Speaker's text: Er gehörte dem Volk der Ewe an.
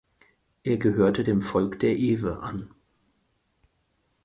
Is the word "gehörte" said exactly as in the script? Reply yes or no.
yes